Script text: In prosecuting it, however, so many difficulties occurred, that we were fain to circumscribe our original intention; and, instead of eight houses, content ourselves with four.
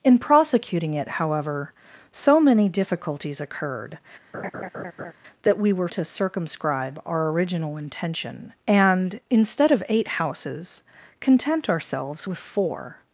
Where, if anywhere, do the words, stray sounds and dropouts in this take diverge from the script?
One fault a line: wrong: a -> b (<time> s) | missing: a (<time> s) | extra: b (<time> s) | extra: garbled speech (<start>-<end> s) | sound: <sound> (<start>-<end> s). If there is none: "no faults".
sound: laugh (4.3-5.1 s)
missing: fain (5.9 s)